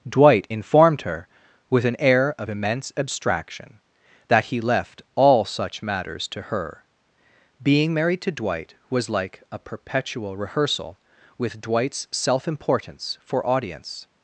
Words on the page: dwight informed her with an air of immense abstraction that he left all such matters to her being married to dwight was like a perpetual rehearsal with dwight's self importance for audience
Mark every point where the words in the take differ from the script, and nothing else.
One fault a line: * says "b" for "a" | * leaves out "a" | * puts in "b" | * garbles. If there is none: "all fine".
all fine